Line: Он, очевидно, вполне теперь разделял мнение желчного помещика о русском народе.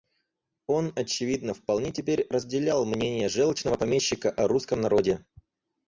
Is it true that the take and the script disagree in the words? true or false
false